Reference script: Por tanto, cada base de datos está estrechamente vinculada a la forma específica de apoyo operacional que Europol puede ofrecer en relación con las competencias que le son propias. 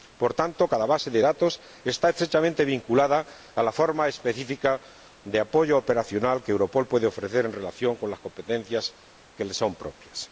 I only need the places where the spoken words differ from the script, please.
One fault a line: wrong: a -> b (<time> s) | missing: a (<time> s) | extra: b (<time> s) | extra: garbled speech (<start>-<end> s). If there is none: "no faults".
no faults